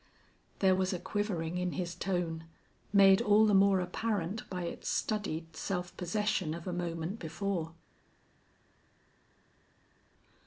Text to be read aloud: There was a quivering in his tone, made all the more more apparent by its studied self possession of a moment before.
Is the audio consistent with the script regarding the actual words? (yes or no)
no